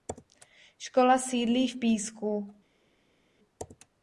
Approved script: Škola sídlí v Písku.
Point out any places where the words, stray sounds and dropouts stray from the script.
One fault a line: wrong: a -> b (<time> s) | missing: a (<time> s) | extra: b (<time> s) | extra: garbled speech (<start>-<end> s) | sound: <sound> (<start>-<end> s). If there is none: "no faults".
no faults